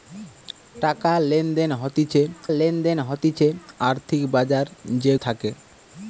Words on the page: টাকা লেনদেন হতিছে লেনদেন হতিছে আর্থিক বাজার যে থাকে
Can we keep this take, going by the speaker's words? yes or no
yes